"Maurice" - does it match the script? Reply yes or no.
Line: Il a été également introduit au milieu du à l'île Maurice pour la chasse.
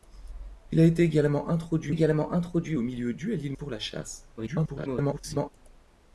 no